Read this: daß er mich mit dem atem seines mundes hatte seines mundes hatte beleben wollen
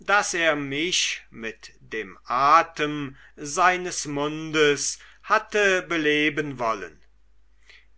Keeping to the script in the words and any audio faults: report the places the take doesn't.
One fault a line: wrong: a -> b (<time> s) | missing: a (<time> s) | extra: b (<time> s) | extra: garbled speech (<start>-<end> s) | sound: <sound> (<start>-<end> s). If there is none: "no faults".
missing: seines mundes hatte (5.8 s)